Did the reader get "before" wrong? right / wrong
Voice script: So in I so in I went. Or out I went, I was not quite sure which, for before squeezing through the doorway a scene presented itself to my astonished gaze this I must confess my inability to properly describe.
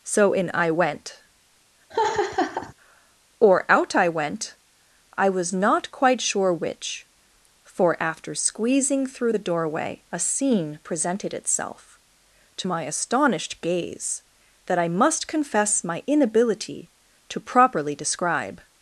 wrong